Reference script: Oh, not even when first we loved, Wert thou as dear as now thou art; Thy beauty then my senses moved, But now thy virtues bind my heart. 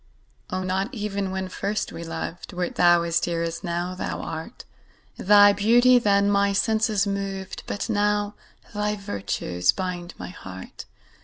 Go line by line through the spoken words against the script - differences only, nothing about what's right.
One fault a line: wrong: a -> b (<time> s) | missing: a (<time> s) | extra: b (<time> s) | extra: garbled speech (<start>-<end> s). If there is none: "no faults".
no faults